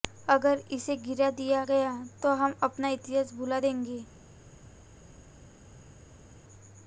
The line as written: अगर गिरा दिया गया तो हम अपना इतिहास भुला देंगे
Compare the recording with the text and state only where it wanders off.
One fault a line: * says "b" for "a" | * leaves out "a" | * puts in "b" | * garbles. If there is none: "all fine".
* puts in "इसे"